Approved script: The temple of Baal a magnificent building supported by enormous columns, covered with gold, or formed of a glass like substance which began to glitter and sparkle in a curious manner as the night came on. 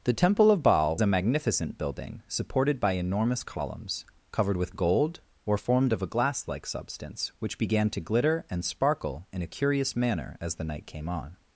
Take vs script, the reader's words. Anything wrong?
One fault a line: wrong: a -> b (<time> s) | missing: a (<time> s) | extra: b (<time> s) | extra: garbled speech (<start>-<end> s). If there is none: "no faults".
no faults